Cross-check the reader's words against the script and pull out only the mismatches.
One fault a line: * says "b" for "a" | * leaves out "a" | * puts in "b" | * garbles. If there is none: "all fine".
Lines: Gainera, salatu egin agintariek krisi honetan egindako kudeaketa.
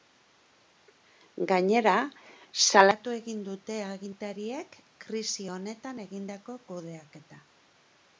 * puts in "dute"